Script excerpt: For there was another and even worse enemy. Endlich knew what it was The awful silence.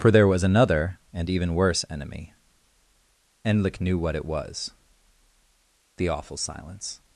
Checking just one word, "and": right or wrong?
right